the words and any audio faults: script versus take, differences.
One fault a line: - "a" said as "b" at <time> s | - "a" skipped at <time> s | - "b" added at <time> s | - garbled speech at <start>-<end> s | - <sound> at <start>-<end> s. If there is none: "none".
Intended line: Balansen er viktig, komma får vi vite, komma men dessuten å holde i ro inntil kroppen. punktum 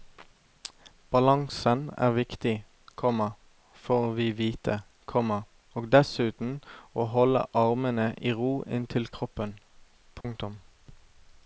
- "men" said as "og" at 5.8 s
- "armene" added at 7.7 s
- dropout at 10.2-10.2 s